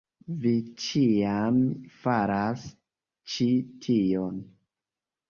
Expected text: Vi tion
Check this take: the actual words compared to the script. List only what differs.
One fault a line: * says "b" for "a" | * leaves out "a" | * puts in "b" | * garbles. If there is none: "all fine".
* puts in "ĉiam faras ĉi"